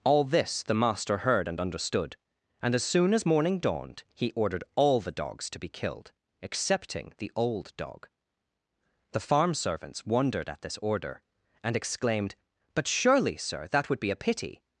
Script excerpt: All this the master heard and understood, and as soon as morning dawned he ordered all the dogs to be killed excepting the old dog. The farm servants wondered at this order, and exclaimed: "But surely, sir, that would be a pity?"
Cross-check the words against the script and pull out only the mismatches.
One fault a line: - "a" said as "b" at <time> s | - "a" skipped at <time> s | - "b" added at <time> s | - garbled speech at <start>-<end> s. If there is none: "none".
none